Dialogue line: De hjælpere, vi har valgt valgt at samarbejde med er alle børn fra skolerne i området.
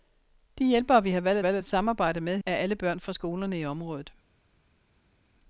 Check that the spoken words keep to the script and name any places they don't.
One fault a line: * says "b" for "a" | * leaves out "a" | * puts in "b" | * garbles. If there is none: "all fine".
all fine